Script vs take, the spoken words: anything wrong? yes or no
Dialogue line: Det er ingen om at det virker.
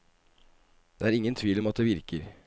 yes